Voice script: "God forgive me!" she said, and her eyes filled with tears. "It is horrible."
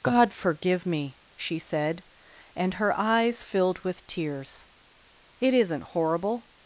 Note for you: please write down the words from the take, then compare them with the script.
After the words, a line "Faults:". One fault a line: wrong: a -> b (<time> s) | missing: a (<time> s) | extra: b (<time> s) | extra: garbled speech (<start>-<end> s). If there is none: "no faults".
"God forgive me!" she said, and her eyes filled with tears. "It isn't horrible."
Faults:
wrong: is -> isn't (5.5 s)